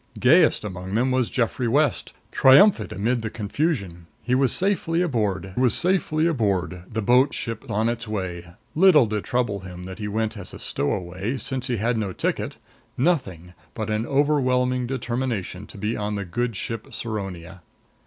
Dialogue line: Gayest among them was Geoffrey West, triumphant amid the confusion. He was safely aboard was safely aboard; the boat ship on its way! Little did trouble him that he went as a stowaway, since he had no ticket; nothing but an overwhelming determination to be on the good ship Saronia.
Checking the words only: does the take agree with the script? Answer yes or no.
yes